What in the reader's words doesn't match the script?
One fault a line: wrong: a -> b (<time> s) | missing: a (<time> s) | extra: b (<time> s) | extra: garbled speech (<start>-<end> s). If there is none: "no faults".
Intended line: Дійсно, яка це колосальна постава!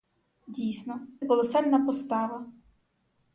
missing: яка це (1.1 s)